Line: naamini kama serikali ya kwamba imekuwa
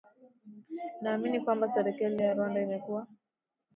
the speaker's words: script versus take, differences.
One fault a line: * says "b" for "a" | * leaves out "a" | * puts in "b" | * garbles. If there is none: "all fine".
* says "kwamba" for "kama"
* says "rwanda" for "kwamba"